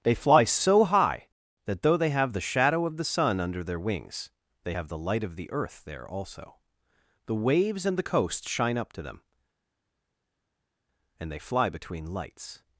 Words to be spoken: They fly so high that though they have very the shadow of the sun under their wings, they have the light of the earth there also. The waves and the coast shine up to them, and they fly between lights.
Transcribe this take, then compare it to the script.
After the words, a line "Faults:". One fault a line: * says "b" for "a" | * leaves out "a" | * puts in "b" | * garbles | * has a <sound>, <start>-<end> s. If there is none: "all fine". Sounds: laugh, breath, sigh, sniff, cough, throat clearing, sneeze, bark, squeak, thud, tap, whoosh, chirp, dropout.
They fly so high that though they have the shadow of the sun under their wings, they have the light of the earth there also. The waves and the coast shine up to them, and they fly between lights.
Faults:
* leaves out "very"